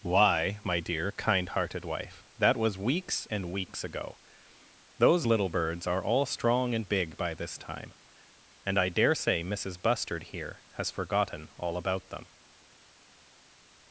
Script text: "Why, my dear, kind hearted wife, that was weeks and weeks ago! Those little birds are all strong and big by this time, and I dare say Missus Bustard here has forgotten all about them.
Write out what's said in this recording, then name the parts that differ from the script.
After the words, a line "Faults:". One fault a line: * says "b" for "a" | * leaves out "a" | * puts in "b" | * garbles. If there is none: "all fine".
"Why, my dear, kind hearted wife, that was weeks and weeks ago! Those little birds are all strong and big by this time, and I dare say Missus Bustard here has forgotten all about them.
Faults:
all fine